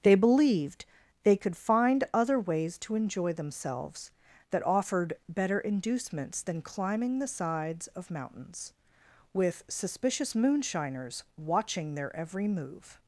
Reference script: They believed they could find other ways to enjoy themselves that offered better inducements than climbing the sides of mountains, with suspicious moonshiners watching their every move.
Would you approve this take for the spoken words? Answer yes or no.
yes